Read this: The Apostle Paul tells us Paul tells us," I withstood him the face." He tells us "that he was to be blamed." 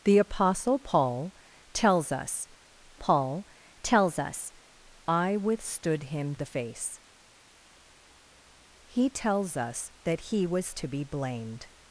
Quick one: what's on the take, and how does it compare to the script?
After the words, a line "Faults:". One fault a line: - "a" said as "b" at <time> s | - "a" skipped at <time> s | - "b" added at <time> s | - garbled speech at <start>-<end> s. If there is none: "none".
The Apostle Paul tells us Paul tells us," I withstood him the face." He tells us "that he was to be blamed."
Faults:
none